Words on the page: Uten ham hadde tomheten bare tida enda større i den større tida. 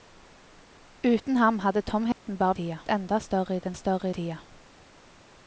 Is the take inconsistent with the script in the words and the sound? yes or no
yes